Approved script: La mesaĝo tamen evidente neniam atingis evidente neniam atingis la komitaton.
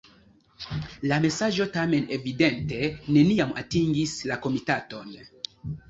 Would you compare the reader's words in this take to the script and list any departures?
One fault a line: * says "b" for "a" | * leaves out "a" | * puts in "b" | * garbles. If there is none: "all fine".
* leaves out "evidente neniam atingis"